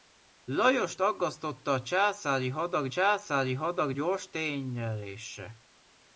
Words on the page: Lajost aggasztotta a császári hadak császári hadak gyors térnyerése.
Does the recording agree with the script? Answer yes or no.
yes